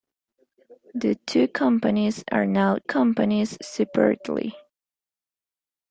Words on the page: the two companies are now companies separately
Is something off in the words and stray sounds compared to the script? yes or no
no